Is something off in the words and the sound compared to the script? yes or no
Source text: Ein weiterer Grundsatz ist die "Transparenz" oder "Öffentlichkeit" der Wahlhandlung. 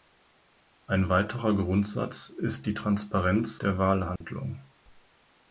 yes